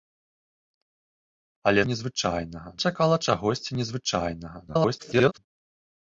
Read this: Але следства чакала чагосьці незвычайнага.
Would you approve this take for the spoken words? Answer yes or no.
no